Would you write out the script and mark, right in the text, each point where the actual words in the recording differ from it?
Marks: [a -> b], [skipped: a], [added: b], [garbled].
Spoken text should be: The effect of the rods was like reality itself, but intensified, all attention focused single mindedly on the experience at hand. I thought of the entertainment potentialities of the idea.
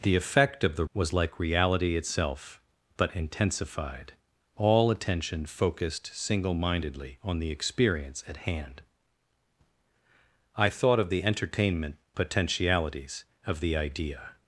The effect of the [skipped: rods] was like reality itself, but intensified, all attention focused single mindedly on the experience at hand. I thought of the entertainment potentialities of the idea.